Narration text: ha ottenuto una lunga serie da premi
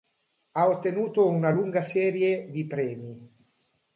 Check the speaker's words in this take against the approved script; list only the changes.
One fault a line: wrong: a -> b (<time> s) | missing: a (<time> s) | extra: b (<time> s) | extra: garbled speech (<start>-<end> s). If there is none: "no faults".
wrong: da -> di (2.5 s)